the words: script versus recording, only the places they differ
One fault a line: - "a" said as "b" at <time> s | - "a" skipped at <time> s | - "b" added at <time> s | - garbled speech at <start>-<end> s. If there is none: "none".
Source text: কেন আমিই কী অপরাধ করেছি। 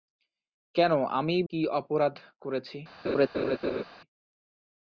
none